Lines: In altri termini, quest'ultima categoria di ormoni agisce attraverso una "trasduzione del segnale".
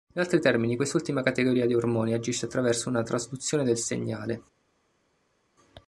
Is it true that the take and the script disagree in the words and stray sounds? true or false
false